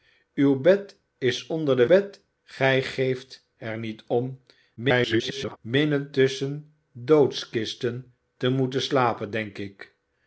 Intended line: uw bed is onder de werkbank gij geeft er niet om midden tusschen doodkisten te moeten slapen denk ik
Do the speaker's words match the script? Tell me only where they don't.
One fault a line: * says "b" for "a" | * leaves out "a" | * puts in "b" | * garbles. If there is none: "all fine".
* says "bed" for "werkbank"
* garbles